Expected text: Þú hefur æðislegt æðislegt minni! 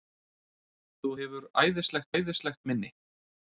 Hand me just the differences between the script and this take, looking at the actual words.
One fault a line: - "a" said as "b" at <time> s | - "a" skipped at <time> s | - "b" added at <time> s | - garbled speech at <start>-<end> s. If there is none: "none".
none